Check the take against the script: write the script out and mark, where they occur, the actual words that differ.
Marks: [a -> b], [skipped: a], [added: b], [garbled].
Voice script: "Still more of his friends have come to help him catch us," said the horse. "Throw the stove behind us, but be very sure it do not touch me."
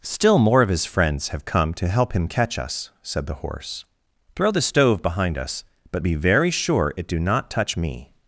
"Still more of his friends have come to help him catch us," said the horse. "Throw the stove behind us, but be very sure it do not touch me."